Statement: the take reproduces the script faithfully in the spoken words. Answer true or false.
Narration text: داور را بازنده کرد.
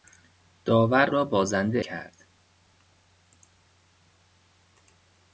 true